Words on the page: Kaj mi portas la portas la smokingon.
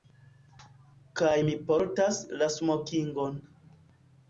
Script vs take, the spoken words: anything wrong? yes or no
yes